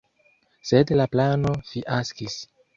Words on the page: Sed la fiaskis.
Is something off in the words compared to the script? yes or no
yes